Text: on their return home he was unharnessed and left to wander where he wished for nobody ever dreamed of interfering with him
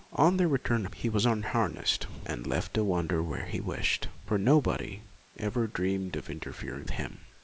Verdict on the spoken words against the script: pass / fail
fail